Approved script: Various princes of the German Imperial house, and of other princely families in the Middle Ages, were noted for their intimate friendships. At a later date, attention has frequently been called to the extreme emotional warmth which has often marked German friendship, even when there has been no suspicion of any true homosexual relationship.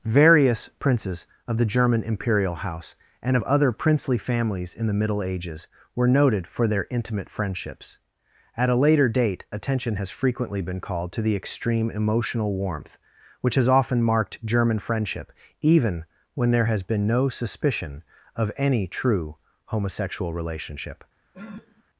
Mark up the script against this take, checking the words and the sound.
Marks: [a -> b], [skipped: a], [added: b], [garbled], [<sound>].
Various princes of the German Imperial house, and of other princely families in the Middle Ages, were noted for their intimate friendships. At a later date, attention has frequently been called to the extreme emotional warmth which has often marked German friendship, even when there has been no suspicion of any true homosexual relationship. [sniff]